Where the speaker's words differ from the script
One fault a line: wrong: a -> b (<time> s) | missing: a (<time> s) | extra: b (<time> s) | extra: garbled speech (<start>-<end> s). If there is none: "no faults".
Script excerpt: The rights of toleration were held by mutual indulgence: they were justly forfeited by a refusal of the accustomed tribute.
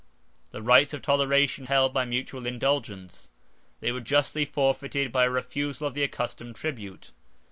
missing: were (1.7 s)